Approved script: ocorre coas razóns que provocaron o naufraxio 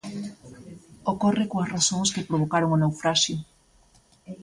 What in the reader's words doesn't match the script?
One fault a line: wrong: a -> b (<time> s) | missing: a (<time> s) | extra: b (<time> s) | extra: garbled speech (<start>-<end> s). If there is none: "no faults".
no faults